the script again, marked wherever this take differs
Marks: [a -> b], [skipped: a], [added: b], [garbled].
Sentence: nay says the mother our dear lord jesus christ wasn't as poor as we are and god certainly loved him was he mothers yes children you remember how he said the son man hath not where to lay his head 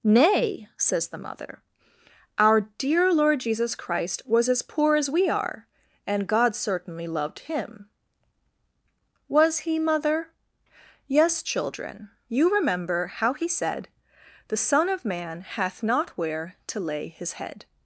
nay says the mother our dear lord jesus christ [wasn't -> was] as poor as we are and god certainly loved him was he [mothers -> mother] yes children you remember how he said the son [added: of] man hath not where to lay his head